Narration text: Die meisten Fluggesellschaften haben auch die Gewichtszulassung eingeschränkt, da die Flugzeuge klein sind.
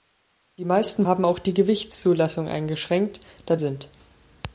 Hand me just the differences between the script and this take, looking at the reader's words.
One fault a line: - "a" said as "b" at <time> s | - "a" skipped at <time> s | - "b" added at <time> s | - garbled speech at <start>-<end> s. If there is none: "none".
- "Fluggesellschaften" skipped at 1.1 s
- "die Flugzeuge klein" skipped at 3.6 s